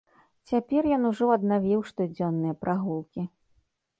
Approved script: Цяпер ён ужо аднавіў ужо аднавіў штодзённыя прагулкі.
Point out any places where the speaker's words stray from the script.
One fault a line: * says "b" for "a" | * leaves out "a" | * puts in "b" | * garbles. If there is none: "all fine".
* leaves out "ужо аднавіў"